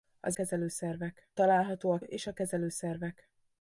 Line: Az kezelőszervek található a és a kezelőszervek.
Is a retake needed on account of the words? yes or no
no